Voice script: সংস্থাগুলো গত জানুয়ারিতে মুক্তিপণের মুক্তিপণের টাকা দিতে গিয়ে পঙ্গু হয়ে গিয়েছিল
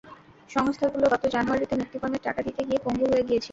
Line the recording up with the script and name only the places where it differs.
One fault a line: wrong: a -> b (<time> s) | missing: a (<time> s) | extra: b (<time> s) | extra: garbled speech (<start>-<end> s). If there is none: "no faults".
missing: মুক্তিপণের (2.2 s)